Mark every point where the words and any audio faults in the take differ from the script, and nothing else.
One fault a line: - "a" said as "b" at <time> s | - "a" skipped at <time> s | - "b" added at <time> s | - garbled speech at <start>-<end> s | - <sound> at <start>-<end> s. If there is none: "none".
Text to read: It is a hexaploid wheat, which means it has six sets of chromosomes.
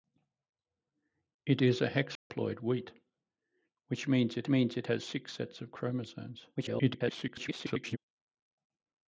- dropout at 2.2-2.3 s
- "means it" added at 4.5 s
- garbled speech at 6.5-8.0 s